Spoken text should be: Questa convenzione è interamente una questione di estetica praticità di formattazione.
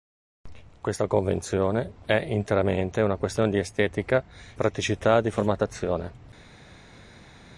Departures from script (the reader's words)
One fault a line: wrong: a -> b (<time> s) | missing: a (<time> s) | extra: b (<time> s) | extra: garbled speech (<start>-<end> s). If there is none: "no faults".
no faults